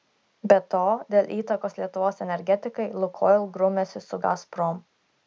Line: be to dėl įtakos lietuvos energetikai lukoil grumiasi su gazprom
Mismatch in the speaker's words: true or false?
false